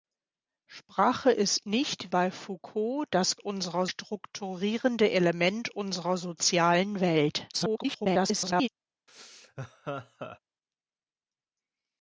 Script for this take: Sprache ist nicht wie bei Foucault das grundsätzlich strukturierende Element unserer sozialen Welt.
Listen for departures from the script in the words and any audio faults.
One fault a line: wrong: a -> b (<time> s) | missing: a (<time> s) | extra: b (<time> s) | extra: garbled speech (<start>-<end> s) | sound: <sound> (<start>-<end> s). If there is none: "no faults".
missing: wie (2.1 s)
wrong: grundsätzlich -> unserer (3.4 s)
extra: garbled speech (7.5-8.7 s)
sound: laugh (9.1-10.4 s)